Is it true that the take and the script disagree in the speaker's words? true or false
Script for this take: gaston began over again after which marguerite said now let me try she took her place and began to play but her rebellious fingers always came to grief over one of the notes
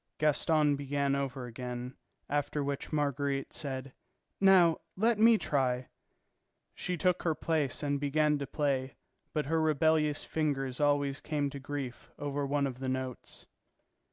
false